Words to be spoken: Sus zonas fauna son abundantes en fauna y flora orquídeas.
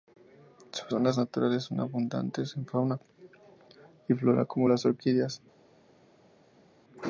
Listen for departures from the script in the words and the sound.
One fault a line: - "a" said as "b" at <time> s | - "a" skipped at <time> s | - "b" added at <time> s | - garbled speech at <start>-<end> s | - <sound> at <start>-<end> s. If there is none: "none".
- "fauna" said as "naturales" at 1.2 s
- "como las" added at 4.4 s